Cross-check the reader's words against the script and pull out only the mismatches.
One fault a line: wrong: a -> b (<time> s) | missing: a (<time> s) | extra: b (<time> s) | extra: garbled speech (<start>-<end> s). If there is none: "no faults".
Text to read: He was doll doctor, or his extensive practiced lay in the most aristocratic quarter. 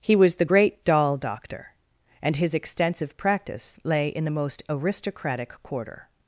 extra: the great (0.3 s)
wrong: or -> and (2.2 s)
wrong: practiced -> practice (3.2 s)